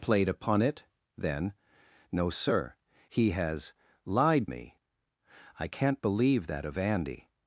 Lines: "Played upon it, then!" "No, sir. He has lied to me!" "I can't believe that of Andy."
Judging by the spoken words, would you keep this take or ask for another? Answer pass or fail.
fail